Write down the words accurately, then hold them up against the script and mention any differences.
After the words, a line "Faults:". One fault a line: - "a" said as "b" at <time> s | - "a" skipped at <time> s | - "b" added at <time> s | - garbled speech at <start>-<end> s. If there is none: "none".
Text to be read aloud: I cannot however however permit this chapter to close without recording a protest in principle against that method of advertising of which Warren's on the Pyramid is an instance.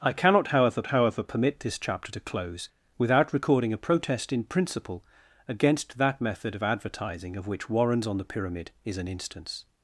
I cannot however however permit this chapter to close without recording a protest in principle against that method of advertising of which Warren's on the Pyramid is an instance.
Faults:
none